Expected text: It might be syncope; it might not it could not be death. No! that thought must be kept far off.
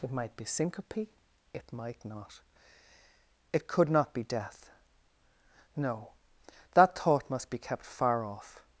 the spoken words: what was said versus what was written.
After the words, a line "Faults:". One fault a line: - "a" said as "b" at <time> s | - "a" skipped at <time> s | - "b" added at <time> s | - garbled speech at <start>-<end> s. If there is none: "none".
It might be syncope; it might not it could not be death. No! that thought must be kept far off.
Faults:
none